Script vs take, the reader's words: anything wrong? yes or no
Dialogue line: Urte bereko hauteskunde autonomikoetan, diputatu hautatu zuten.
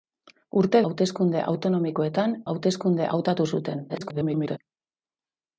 yes